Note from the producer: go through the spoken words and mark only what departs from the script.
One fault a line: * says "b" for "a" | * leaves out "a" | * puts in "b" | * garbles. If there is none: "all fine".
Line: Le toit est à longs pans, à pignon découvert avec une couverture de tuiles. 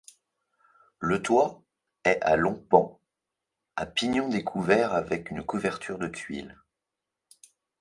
all fine